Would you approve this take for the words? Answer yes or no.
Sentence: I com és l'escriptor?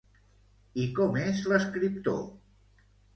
yes